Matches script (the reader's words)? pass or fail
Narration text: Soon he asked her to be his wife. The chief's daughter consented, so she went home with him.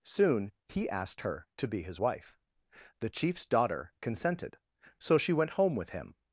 pass